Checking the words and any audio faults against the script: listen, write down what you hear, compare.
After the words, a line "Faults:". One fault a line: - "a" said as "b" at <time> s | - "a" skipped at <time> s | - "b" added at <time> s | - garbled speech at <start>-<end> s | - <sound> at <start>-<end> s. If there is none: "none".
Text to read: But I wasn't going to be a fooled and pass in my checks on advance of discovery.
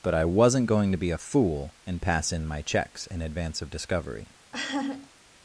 But I wasn't going to be a fool and pass in my checks in advance of discovery.
Faults:
- "fooled" said as "fool" at 1.2 s
- "on" said as "in" at 3.0 s
- laugh at 4.5-5.1 s